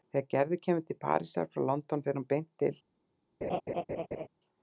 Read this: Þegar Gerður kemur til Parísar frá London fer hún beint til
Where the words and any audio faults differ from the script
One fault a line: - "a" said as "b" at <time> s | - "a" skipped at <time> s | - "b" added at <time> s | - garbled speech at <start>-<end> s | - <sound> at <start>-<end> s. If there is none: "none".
- laugh at 3.4-4.3 s